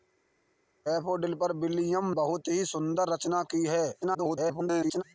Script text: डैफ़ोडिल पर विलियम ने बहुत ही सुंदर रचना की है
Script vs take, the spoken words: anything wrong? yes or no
yes